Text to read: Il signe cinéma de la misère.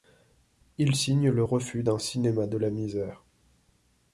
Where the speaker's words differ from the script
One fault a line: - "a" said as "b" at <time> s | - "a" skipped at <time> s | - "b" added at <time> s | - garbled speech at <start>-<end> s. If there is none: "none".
- "le refus d'un" added at 1.3 s